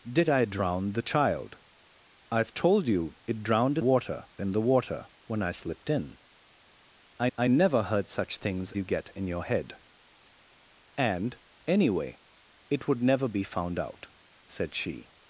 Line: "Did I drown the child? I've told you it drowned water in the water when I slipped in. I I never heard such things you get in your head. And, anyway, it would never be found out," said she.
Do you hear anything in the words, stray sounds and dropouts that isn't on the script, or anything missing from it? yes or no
no